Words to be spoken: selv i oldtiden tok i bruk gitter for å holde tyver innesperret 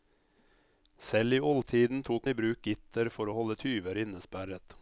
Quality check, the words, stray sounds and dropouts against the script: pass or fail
pass